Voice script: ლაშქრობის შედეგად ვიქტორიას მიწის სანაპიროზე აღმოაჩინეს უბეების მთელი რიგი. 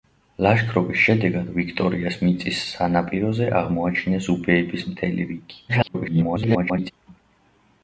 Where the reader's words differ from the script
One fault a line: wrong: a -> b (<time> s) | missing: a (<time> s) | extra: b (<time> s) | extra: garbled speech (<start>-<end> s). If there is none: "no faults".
extra: garbled speech (5.7-6.9 s)